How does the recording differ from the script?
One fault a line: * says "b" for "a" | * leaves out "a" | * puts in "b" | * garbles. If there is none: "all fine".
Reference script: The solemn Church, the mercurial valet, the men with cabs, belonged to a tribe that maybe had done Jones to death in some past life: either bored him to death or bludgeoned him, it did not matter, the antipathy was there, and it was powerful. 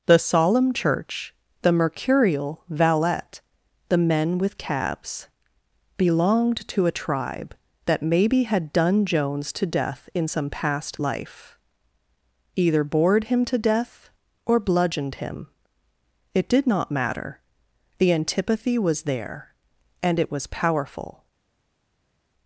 all fine